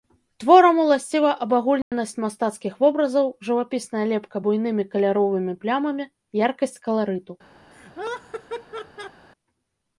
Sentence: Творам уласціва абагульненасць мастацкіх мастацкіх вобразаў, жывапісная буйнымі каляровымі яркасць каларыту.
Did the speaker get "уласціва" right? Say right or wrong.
right